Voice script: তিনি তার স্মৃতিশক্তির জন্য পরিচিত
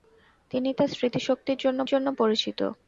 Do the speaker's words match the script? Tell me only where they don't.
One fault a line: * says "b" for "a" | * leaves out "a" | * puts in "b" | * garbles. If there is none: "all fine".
* puts in "জন্য"